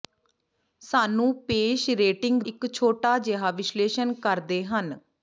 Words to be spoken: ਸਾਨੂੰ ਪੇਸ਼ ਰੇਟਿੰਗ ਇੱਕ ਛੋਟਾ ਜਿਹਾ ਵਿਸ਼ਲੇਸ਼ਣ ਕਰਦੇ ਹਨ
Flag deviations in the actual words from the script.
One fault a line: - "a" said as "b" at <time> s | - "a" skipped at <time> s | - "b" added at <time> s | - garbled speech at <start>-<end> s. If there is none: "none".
none